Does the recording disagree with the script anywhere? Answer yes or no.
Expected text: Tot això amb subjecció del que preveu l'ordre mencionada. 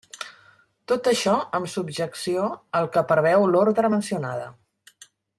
yes